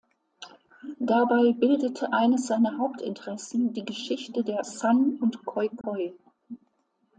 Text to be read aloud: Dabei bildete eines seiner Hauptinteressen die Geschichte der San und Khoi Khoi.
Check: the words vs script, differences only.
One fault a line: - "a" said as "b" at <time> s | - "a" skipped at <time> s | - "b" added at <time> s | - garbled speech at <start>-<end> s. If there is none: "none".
none